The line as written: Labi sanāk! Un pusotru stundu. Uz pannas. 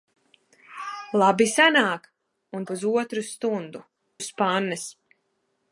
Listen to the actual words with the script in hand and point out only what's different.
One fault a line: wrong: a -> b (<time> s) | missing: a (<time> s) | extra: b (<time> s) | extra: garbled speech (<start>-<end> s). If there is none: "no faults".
no faults